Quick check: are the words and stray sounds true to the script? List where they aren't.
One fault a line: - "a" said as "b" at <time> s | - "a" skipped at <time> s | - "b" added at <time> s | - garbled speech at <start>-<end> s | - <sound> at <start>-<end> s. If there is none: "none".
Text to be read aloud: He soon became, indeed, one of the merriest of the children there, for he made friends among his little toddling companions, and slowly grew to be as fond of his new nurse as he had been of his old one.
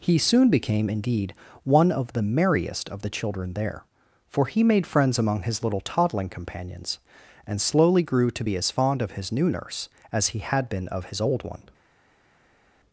none